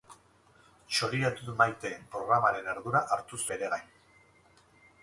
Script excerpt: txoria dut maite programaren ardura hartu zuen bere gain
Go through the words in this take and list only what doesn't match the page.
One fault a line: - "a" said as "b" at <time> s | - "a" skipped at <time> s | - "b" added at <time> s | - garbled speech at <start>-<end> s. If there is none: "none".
- "zuen" skipped at 3.4 s